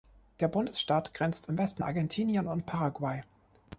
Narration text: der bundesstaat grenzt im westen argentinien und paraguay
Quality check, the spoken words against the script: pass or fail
pass